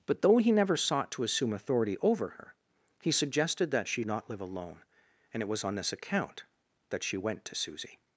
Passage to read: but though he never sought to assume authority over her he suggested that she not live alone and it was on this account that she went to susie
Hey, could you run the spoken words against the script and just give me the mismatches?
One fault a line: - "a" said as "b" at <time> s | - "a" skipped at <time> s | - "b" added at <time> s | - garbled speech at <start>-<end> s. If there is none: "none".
none